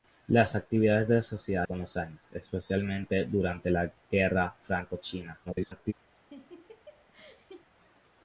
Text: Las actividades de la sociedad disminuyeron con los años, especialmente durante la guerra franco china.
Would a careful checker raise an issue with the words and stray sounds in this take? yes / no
yes